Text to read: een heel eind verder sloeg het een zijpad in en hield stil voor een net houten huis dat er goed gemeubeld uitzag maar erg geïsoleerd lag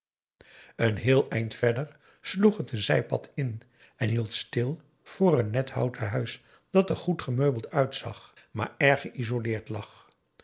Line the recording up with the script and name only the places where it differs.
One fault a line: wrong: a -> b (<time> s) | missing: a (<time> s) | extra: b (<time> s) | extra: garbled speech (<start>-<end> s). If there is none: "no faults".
no faults